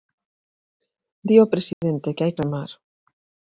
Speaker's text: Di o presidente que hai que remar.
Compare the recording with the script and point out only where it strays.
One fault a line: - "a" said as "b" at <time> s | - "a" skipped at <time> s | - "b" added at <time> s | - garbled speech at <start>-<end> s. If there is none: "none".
- "que" skipped at 2.3 s